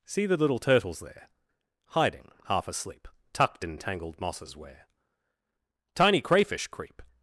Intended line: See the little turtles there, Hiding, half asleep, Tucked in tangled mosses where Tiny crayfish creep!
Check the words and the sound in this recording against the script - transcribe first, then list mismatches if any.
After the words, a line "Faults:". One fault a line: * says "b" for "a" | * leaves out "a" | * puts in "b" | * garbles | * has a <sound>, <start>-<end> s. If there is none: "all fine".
See the little turtles there, Hiding, half asleep, Tucked in tangled mosses where Tiny crayfish creep!
Faults:
all fine